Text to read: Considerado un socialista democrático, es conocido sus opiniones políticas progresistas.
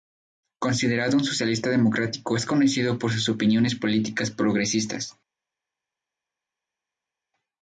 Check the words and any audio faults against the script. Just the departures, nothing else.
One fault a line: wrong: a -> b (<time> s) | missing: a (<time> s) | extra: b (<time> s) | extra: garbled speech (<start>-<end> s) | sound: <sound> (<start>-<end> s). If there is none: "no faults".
extra: por (3.0 s)